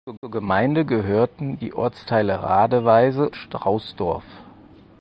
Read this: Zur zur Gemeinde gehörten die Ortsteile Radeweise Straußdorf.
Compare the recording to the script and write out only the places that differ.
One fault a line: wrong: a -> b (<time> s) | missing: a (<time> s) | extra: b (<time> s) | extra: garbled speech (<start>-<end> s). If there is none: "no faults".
no faults